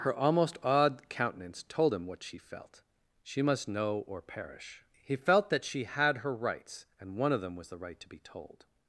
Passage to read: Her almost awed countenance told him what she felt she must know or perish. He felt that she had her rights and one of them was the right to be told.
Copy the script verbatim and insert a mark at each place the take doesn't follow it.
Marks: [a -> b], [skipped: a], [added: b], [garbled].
Her almost awed countenance told him what she felt she must know or perish. He felt that she had her rights and one of them was the right to be told.